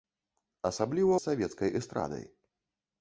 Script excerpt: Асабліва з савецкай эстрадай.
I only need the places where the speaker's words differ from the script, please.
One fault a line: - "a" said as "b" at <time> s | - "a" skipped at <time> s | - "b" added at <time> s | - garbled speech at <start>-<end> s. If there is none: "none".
none